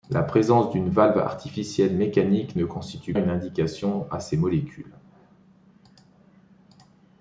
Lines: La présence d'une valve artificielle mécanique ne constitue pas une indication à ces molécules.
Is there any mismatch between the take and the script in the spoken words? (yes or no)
yes